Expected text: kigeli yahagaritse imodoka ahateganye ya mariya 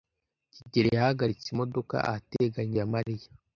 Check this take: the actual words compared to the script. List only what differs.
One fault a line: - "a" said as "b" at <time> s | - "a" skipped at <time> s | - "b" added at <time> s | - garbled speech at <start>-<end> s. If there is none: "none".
none